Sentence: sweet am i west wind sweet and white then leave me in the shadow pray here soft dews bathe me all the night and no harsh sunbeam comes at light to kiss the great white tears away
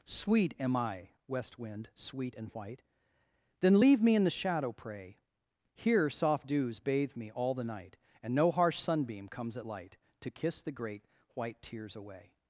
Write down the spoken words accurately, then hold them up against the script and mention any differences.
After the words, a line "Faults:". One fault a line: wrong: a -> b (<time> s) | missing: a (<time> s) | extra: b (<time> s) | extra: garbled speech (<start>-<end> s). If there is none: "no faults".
sweet am i west wind sweet and white then leave me in the shadow pray here soft dews bathe me all the night and no harsh sunbeam comes at light to kiss the great white tears away
Faults:
no faults